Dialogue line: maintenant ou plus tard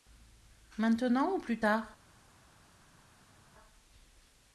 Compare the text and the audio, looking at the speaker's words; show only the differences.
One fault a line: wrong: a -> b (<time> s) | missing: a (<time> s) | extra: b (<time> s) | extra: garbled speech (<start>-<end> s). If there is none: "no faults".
no faults